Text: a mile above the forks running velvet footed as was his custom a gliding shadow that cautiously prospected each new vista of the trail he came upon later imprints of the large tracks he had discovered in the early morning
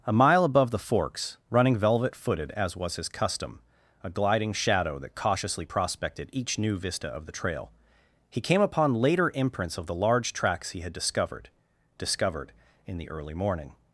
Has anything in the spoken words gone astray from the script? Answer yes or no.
yes